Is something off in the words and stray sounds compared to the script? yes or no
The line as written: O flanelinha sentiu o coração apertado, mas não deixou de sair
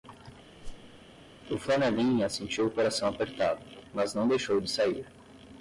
yes